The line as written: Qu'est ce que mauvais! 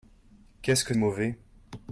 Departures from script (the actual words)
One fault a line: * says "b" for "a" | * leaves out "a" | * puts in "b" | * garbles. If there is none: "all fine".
all fine